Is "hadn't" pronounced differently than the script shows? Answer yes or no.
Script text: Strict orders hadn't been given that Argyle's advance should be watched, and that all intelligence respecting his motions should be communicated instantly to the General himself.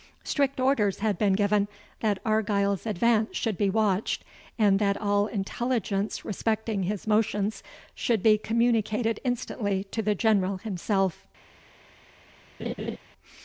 yes